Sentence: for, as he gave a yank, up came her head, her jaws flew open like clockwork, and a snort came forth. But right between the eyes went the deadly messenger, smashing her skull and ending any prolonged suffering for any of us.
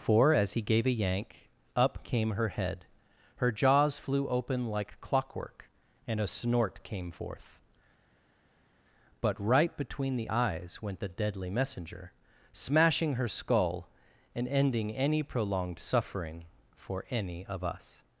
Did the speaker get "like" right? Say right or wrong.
right